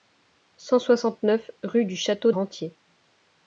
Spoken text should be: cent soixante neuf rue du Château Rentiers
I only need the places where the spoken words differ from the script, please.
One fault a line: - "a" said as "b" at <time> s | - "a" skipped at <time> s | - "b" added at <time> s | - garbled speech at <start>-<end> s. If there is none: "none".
none